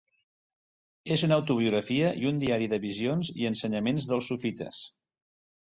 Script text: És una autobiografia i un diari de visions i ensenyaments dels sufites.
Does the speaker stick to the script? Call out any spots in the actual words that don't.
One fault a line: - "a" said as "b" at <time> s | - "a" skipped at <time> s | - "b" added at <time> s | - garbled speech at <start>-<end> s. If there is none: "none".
none